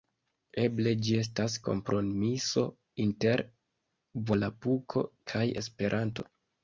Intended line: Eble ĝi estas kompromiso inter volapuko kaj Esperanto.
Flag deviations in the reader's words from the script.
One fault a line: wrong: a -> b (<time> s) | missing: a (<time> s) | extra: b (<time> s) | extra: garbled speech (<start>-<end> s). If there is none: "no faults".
no faults